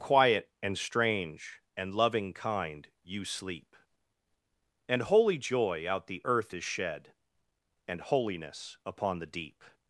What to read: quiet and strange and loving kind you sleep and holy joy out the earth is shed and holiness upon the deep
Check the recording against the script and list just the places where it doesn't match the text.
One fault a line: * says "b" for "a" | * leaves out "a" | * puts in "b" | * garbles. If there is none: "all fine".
all fine